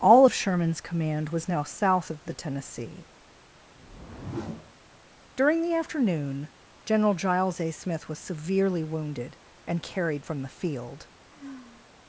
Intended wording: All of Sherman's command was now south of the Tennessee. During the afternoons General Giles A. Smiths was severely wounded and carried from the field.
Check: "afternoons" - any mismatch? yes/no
yes